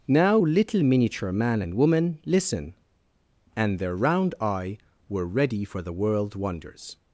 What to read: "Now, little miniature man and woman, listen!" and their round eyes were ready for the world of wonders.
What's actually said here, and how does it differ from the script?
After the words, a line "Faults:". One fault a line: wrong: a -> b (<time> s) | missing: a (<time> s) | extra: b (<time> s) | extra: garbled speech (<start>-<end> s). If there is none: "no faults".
"Now, little miniature man and woman, listen!" and their round eye were ready for the world wonders.
Faults:
wrong: eyes -> eye (4.4 s)
missing: of (6.3 s)